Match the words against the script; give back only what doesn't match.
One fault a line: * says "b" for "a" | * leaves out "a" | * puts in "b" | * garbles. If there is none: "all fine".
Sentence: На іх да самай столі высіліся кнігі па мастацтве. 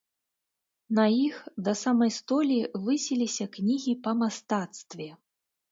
all fine